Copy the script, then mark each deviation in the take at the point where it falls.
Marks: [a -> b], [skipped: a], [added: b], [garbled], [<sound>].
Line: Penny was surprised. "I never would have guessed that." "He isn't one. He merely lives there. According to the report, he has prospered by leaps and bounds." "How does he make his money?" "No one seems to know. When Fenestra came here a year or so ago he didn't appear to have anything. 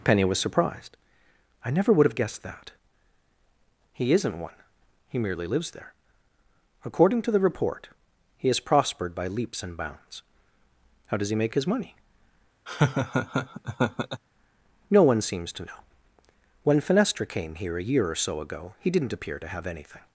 Penny was surprised. "I never would have guessed that." "He isn't one. He merely lives there. According to the report, he has prospered by leaps and bounds." "How does he make his money?" [laugh] "No one seems to know. When Fenestra came here a year or so ago he didn't appear to have anything.